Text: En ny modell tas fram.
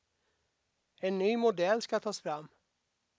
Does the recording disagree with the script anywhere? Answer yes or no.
yes